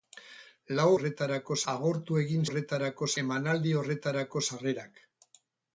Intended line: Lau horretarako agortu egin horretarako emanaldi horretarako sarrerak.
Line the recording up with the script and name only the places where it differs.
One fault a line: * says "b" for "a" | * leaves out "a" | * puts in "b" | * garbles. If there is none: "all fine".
all fine